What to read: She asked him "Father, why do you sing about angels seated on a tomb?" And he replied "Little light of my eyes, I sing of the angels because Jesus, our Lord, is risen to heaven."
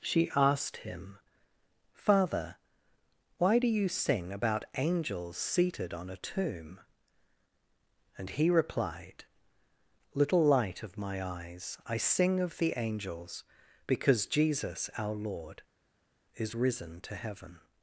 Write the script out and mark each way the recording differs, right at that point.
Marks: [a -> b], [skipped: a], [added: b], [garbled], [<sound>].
She asked him "Father, why do you sing about angels seated on a tomb?" And he replied "Little light of my eyes, I sing of the angels because Jesus, our Lord, is risen to heaven."